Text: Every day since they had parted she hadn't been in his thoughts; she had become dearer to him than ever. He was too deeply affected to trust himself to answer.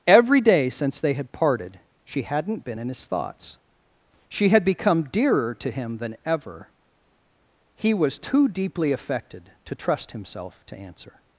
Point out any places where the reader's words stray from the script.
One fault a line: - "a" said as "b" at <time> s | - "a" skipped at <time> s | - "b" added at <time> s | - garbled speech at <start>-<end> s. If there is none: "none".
none